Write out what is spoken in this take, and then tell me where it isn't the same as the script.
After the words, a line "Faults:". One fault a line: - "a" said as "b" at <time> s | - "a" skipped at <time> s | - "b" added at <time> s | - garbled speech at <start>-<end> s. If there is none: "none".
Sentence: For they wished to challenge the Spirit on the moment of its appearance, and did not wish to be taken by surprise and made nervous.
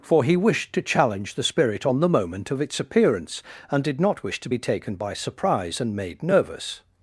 For he wished to challenge the Spirit on the moment of its appearance, and did not wish to be taken by surprise and made nervous.
Faults:
- "they" said as "he" at 0.2 s